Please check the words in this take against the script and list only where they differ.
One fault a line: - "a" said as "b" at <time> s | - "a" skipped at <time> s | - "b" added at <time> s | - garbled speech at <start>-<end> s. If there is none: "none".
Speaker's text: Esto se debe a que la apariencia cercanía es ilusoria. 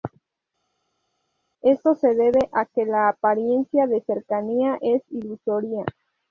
- "de" added at 3.9 s